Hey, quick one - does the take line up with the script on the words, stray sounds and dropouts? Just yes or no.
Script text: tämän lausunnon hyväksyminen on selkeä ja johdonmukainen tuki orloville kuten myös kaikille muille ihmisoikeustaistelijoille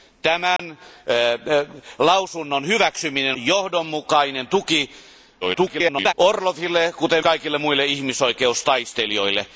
no